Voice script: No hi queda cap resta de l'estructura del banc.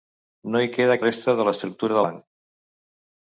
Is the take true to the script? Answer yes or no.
no